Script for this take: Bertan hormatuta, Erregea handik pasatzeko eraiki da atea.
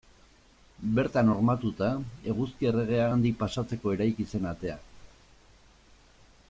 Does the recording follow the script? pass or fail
fail